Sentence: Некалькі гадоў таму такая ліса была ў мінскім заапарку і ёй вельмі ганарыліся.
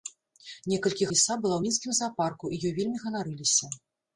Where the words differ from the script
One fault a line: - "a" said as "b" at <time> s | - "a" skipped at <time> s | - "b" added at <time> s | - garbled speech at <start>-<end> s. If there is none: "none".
- "гадоў таму такая" skipped at 1.1 s